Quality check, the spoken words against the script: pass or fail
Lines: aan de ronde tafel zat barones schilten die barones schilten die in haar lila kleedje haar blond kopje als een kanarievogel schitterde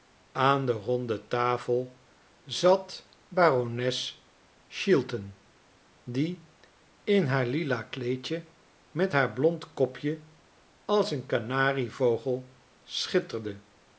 fail